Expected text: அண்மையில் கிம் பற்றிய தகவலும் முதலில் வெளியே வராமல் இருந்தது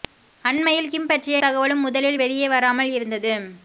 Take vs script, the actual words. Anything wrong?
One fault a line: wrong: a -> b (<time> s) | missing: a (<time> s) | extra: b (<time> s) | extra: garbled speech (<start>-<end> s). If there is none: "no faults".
no faults